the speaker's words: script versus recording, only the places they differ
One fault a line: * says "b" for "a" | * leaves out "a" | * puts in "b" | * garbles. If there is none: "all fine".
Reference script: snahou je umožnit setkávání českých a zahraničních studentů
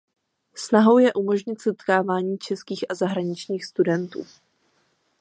all fine